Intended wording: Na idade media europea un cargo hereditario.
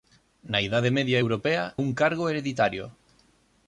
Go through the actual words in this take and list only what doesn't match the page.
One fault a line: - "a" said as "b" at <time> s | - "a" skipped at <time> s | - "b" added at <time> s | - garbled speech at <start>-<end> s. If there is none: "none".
none